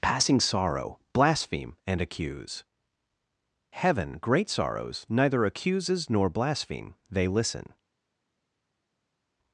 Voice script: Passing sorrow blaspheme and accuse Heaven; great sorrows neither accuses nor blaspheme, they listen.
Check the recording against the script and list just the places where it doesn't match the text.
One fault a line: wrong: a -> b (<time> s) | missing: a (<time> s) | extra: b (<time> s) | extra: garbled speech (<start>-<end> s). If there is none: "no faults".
no faults